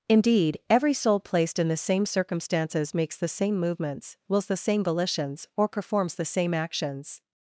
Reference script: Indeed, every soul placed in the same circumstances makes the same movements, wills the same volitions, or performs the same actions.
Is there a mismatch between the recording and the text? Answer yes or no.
no